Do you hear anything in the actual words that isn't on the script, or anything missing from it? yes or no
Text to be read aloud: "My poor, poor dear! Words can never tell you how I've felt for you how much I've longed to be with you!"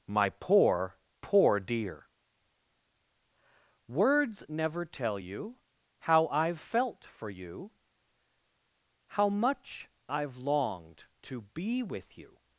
yes